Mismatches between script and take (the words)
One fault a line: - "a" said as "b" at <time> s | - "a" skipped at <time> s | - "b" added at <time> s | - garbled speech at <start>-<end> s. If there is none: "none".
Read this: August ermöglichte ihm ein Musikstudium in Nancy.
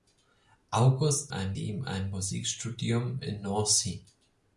- "ermöglichte" said as "ein" at 1.3 s